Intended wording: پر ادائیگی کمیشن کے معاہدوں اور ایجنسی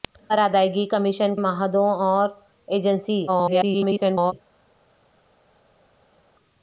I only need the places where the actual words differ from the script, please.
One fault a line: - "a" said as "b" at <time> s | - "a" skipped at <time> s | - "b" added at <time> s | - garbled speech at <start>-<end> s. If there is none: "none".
- "کے" skipped at 1.4 s
- garbled speech at 3.3-4.3 s